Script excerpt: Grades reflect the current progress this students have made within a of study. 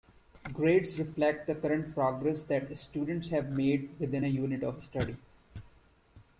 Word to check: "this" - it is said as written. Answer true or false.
false